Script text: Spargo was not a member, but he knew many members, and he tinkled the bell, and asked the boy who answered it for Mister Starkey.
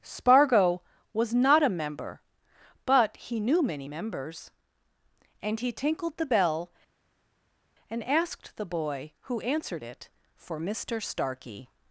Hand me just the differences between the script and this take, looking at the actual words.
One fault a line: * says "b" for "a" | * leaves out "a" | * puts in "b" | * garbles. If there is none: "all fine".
all fine